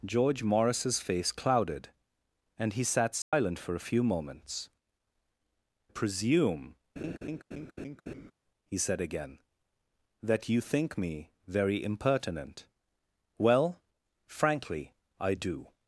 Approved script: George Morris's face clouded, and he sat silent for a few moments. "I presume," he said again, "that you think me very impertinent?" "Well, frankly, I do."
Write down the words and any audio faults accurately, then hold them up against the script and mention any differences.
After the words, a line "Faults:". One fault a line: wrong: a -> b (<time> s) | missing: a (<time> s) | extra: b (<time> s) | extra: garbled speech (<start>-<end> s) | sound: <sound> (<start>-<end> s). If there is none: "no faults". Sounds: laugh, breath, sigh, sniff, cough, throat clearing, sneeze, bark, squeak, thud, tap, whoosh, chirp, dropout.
George Morris's face clouded, and he sat silent for a few moments. "presume," he said again, "that you think me very impertinent?" "Well, frankly, I do."
Faults:
sound: dropout (3.2-3.3 s)
missing: I (4.7 s)
sound: laugh (7.0-8.3 s)